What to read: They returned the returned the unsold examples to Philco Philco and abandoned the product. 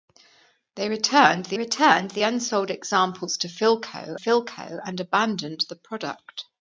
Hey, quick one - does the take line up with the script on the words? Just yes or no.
yes